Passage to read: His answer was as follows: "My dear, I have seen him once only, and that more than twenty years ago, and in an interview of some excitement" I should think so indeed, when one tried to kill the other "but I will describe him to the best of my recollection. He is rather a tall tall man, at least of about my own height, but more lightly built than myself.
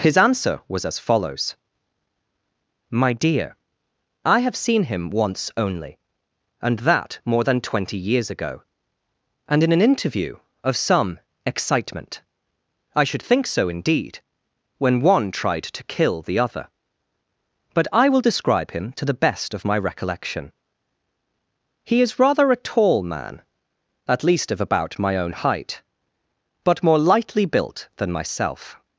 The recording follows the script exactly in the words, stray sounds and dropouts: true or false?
false